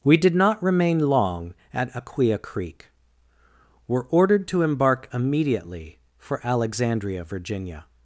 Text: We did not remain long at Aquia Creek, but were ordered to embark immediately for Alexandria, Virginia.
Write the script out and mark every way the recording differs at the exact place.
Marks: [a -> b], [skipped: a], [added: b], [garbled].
We did not remain long at Aquia Creek, [skipped: but] were ordered to embark immediately for Alexandria, Virginia.